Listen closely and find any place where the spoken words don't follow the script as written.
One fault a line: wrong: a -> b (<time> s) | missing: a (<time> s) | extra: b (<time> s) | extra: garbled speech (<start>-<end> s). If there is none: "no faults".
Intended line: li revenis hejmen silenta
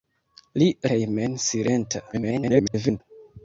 missing: revenis (0.7 s)
extra: garbled speech (2.1-3.0 s)